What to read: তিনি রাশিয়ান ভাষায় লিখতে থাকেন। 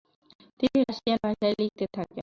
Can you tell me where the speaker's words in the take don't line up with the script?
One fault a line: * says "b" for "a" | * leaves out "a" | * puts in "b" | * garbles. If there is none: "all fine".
all fine